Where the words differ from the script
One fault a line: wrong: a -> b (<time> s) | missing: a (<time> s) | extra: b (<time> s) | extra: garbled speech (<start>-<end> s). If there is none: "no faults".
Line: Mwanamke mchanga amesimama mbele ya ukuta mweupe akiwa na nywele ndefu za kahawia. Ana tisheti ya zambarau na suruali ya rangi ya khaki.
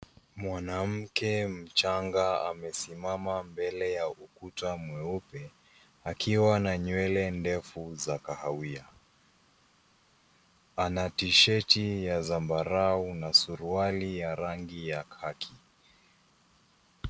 no faults